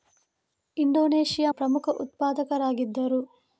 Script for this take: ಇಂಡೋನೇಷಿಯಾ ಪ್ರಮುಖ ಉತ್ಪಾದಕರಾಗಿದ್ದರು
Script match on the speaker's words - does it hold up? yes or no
yes